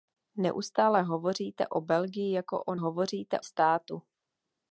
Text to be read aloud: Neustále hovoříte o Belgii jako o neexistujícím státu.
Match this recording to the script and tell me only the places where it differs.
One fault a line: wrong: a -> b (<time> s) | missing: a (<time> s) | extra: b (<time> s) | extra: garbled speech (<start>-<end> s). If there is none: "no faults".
wrong: neexistujícím -> hovoříte (2.8 s)